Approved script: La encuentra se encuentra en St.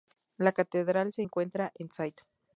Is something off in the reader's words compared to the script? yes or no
yes